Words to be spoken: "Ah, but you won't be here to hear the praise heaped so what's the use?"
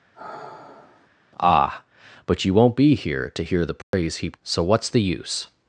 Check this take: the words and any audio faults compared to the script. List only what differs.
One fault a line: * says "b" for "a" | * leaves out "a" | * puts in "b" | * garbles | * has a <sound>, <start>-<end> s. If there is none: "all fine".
* has a sigh, 0.1-1.1 s
* has a dropout, 3.8-3.9 s